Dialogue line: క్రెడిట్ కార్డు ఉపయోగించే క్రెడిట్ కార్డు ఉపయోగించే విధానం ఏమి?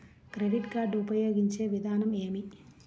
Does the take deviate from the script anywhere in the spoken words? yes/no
yes